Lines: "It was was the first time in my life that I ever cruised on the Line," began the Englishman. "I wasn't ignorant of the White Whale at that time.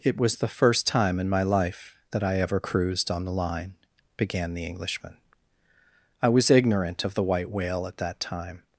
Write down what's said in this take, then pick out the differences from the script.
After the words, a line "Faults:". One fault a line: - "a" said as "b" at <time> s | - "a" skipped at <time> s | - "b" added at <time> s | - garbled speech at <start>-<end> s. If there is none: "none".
"It was the first time in my life that I ever cruised on the Line," began the Englishman. "I was ignorant of the White Whale at that time.
Faults:
- "was" skipped at 0.4 s
- "wasn't" said as "was" at 6.3 s